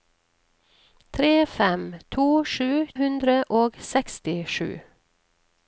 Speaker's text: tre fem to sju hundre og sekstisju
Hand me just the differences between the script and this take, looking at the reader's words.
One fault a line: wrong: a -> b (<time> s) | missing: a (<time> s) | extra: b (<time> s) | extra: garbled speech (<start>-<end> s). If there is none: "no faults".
no faults